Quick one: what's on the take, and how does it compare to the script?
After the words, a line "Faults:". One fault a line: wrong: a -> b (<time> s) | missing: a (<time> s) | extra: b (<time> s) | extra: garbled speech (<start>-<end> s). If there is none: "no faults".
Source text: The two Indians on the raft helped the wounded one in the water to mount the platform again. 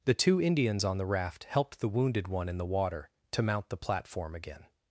The two Indians on the raft helped the wounded one in the water to mount the platform again.
Faults:
no faults